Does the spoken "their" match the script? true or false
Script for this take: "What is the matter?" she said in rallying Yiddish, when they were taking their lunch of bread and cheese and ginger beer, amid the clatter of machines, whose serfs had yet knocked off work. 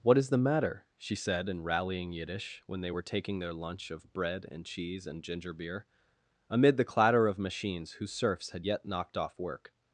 true